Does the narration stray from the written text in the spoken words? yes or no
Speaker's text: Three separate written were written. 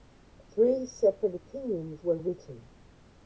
yes